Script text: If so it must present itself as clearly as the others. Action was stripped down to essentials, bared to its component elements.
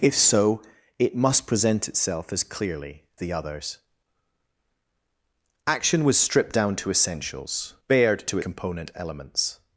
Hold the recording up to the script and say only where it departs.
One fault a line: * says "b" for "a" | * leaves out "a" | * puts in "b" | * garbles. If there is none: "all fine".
* leaves out "as"
* leaves out "its"